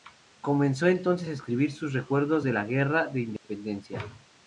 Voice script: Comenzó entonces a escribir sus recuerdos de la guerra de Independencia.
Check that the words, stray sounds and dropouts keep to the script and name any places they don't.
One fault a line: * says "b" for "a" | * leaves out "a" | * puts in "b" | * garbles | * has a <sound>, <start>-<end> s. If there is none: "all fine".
* has a dropout, 3.4-3.4 s